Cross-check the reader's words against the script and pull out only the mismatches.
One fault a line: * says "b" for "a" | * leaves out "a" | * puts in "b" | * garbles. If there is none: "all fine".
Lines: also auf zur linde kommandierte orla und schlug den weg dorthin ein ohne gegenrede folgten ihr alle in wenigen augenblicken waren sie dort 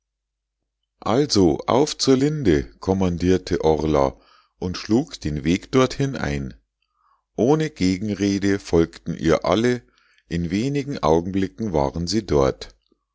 all fine